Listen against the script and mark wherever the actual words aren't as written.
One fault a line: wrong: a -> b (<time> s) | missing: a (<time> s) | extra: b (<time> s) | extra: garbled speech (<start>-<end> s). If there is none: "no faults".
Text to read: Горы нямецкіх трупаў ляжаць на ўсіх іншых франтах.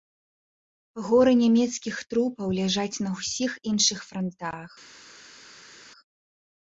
no faults